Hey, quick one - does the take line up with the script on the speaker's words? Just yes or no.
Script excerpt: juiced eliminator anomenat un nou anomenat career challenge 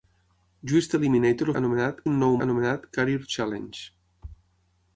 yes